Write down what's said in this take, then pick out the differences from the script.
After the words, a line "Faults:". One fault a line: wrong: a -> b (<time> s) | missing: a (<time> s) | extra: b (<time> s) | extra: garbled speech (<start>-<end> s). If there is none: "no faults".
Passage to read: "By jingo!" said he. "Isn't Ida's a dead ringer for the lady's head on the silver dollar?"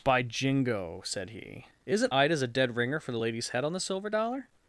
"By jingo!" said he. "Isn't Ida's a dead ringer for the lady's head on the silver dollar?"
Faults:
no faults